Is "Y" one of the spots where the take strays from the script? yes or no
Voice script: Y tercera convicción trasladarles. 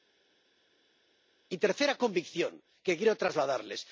no